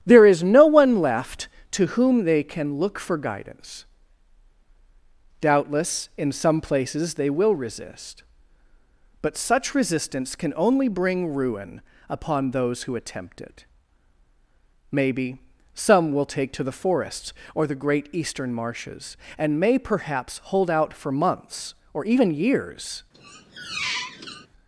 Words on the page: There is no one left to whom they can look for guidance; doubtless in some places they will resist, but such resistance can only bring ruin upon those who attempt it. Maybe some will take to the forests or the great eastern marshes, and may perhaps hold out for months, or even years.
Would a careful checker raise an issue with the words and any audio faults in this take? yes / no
yes